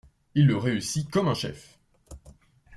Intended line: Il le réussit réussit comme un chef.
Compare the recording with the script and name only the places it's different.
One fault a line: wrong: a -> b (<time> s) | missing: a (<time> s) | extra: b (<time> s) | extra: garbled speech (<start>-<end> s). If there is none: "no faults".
missing: réussit (1.1 s)